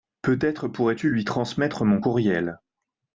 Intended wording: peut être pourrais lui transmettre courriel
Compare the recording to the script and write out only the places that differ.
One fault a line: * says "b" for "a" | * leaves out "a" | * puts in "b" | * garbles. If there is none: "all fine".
* puts in "tu"
* puts in "mon"